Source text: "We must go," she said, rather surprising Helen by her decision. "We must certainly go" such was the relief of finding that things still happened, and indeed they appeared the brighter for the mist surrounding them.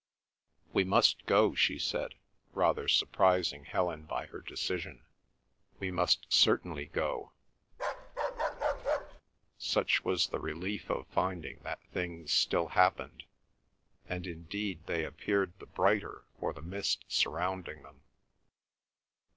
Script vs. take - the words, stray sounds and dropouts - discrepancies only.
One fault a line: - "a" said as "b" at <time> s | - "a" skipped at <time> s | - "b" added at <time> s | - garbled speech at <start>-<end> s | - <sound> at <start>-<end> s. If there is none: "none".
- bark at 7.7-9.2 s